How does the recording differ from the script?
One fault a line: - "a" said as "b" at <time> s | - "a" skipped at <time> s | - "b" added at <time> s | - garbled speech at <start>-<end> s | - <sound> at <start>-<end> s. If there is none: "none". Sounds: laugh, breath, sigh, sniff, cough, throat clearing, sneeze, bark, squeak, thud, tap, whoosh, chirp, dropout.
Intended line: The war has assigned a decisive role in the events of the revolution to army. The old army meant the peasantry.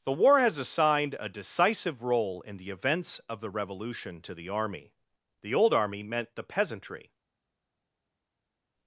- "the" added at 4.3 s